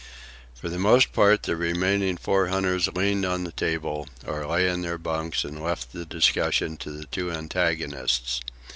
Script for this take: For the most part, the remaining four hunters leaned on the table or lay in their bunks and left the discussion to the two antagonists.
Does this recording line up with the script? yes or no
yes